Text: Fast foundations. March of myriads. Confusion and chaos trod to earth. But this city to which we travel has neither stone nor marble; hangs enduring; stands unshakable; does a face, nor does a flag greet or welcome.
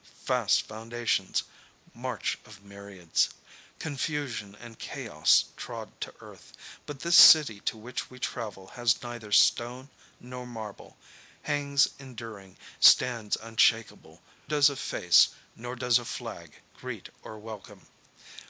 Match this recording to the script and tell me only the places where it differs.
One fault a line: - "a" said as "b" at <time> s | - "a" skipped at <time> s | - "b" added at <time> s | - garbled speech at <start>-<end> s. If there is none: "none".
none